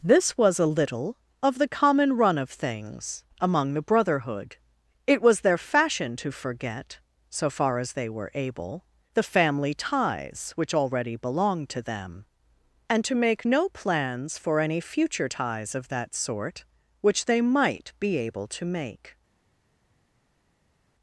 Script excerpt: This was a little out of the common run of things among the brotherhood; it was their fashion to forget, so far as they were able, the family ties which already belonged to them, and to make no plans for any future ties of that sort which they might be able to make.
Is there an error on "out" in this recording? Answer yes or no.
yes